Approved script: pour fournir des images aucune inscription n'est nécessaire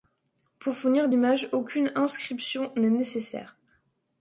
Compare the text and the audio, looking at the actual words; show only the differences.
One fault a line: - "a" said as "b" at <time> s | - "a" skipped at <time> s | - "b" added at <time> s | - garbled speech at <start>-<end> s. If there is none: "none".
- "des" skipped at 1.1 s